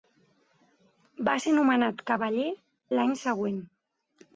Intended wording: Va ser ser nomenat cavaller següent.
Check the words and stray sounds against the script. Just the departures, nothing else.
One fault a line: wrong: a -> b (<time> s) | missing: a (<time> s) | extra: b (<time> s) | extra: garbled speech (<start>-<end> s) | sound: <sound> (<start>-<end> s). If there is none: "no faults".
missing: ser (1.6 s)
extra: l'any (3.0 s)